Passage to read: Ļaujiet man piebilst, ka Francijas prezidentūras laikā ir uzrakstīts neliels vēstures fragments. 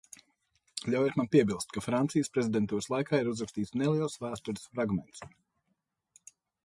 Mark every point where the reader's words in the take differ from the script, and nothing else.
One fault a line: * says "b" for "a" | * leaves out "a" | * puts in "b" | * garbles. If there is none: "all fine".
all fine